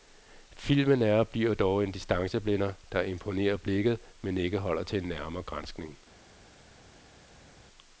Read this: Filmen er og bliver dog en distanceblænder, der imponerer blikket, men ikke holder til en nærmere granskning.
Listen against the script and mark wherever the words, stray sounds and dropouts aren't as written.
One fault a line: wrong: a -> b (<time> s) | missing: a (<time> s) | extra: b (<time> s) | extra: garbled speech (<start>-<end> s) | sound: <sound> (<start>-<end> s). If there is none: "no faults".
no faults